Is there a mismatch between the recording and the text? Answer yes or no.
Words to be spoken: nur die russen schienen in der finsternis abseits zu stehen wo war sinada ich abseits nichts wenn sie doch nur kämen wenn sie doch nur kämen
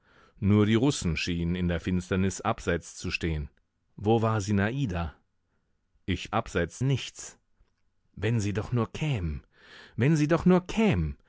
no